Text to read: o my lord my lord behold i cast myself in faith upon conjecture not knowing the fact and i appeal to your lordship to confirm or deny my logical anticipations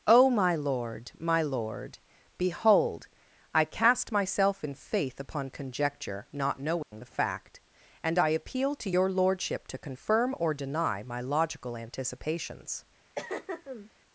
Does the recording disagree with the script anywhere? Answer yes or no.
no